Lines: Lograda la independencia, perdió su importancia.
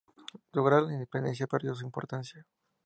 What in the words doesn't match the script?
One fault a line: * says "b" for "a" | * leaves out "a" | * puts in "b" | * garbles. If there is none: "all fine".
all fine